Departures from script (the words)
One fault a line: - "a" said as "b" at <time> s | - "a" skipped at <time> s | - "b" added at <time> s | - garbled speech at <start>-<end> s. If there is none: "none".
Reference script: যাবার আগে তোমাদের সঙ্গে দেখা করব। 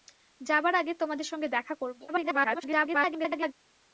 - garbled speech at 2.1-3.5 s